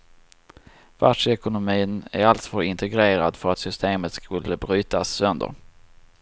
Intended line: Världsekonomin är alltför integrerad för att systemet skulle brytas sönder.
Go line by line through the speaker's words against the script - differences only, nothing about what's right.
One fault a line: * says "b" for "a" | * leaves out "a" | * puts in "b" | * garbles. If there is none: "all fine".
all fine